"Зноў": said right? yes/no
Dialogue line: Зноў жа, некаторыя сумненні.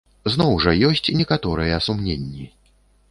yes